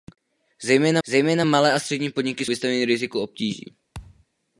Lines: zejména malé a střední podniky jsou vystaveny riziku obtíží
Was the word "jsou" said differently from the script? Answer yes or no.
yes